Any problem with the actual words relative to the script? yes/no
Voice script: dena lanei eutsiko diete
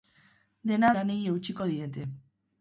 no